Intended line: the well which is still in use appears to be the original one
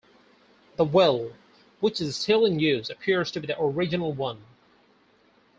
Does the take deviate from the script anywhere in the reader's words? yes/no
no